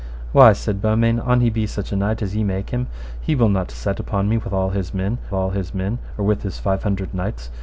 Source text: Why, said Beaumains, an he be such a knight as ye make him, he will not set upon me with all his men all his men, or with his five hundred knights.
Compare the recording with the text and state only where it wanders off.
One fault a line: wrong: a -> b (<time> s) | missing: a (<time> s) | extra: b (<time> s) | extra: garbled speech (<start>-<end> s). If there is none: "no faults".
no faults